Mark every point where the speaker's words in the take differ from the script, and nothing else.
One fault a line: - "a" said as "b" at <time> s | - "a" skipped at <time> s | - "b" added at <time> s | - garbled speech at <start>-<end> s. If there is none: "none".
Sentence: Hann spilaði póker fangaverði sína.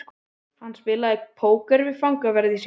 - "við" added at 1.9 s